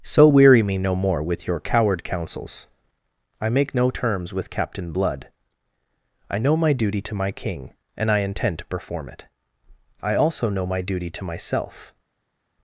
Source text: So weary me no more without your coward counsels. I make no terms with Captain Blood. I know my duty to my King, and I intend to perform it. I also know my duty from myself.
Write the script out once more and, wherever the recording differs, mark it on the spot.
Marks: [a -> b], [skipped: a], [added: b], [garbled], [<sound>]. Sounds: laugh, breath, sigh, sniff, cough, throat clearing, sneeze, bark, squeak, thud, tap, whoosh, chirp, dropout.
So weary me no more [without -> with] your coward counsels. I make no terms with Captain Blood. I know my duty to my King, and I intend to perform it. I also know my duty [from -> to] myself.